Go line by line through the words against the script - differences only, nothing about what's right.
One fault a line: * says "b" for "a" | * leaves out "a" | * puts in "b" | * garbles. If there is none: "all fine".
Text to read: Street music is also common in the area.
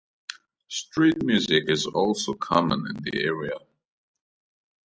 all fine